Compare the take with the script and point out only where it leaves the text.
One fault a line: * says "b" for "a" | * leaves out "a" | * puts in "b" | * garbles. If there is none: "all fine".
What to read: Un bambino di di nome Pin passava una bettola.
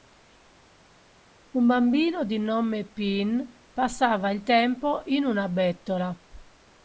* leaves out "di"
* puts in "il tempo in"